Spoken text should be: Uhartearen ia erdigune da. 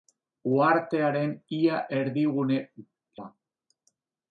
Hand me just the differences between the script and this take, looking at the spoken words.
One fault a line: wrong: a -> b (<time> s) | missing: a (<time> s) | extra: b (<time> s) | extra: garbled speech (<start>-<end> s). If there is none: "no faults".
no faults